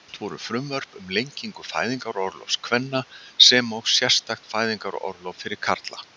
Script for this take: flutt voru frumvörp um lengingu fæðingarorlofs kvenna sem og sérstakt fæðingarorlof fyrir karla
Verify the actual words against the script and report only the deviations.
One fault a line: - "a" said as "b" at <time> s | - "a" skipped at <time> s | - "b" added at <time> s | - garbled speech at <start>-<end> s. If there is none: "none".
none